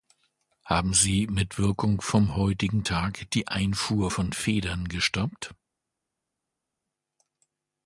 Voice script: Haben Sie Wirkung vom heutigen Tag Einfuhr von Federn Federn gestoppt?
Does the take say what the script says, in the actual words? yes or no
no